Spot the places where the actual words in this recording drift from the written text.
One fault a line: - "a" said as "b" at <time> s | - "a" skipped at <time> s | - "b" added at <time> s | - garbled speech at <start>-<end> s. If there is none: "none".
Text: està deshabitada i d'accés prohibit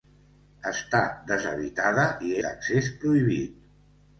none